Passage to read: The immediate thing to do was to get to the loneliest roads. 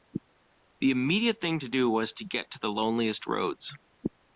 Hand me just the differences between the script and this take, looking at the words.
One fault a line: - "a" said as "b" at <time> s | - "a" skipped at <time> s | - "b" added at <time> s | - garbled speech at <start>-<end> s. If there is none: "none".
none